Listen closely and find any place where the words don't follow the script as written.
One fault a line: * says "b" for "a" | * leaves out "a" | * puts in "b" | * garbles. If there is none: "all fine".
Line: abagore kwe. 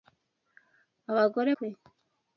all fine